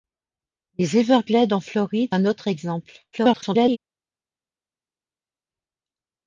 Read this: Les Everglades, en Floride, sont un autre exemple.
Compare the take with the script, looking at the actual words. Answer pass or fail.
fail